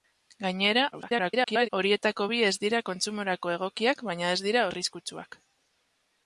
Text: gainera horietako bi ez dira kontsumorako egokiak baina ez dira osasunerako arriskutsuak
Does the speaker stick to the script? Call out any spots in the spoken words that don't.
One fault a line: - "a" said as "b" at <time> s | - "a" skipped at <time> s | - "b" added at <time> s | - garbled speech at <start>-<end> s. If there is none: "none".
- garbled speech at 0.9-1.7 s
- "osasunerako" skipped at 4.6 s